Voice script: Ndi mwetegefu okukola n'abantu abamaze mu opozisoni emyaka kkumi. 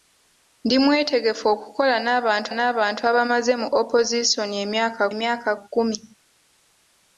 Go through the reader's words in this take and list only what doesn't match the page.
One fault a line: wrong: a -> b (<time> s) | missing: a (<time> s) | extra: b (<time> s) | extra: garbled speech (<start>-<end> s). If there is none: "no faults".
extra: n'abantu (2.5 s)
extra: emyaka (5.1 s)